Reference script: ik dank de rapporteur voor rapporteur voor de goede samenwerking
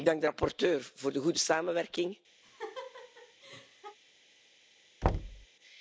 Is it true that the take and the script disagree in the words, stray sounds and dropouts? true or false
true